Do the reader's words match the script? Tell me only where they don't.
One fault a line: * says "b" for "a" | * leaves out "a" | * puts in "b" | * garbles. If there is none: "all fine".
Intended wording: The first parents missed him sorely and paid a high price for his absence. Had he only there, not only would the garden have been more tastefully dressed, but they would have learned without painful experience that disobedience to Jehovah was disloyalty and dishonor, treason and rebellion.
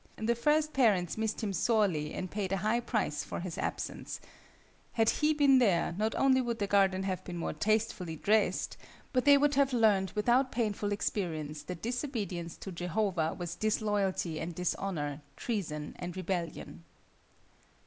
* says "been" for "only"